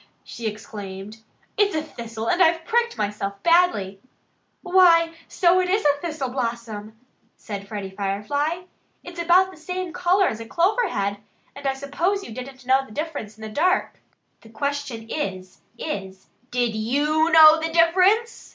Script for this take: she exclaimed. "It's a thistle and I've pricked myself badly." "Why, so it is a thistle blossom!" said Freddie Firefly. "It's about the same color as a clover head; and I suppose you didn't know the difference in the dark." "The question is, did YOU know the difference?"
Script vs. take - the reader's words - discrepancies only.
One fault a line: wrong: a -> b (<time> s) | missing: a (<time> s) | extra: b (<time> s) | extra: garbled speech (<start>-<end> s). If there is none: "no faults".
extra: is (15.8 s)